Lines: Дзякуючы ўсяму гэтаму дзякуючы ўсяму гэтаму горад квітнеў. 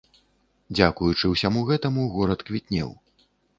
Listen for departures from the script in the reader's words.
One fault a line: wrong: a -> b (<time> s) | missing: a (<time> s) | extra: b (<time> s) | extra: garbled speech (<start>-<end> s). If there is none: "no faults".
missing: дзякуючы ўсяму гэтаму (2.1 s)